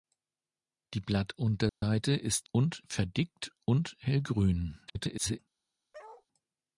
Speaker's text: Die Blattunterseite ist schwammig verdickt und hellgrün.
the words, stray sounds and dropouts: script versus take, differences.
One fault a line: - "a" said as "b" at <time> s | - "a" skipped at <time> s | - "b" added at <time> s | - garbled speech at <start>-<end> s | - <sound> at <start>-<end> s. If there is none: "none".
- dropout at 1.7-1.8 s
- "schwammig" said as "und" at 2.5 s
- garbled speech at 4.9-5.4 s
- bark at 5.9-6.3 s